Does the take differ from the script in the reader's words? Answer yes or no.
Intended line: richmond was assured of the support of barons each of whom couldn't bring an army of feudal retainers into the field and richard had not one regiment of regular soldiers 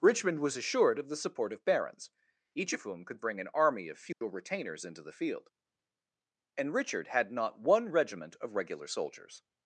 yes